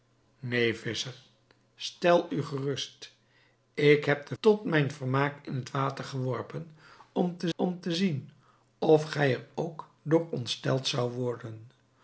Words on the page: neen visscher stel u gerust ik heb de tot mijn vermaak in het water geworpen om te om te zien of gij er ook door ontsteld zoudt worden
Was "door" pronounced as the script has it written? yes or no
yes